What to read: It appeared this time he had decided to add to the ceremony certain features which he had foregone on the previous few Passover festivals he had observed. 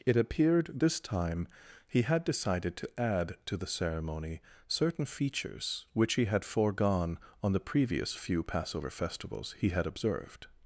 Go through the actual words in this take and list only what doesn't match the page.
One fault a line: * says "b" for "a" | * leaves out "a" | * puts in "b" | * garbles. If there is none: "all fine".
all fine